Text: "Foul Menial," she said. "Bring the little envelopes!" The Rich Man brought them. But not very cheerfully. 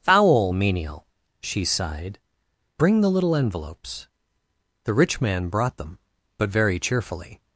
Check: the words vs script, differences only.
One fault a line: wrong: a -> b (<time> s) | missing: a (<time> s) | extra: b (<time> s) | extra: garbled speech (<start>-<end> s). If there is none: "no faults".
wrong: said -> sighed (1.6 s)
missing: not (6.5 s)